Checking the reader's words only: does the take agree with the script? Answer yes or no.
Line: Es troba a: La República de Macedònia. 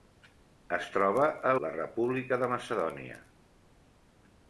yes